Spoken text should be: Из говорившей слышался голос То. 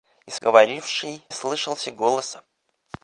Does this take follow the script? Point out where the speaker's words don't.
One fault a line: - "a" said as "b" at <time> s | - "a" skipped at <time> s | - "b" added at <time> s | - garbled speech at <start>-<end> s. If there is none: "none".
none